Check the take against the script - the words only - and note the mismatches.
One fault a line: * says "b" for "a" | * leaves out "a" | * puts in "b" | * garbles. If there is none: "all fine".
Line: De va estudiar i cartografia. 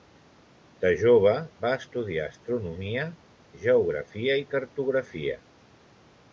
* puts in "jove"
* puts in "astronomia geografia"